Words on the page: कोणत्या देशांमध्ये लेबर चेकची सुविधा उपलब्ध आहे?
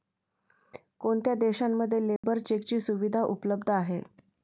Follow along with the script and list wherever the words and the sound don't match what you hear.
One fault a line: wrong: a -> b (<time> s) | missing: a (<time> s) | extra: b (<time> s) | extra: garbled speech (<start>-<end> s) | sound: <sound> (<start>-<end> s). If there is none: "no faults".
sound: dropout (2.2-2.2 s)